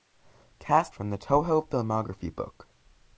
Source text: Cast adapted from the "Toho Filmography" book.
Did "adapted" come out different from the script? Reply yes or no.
yes